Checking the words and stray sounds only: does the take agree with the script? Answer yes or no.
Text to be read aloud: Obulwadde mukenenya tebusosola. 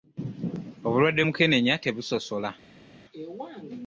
yes